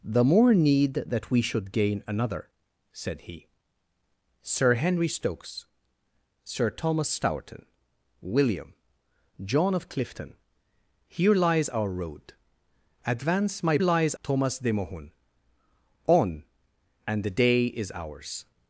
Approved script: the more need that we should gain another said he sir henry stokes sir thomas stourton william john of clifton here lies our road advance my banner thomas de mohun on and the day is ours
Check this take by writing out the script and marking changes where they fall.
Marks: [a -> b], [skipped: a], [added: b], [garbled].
the more need that we should gain another said he sir henry stokes sir thomas stourton william john of clifton here lies our road advance my [banner -> lies] thomas de mohun on and the day is ours